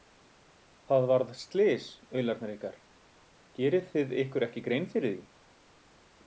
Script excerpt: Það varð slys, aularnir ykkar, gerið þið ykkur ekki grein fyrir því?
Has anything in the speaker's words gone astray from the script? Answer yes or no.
no